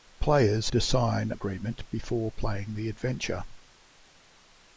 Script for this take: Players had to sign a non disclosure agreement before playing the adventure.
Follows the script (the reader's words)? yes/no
no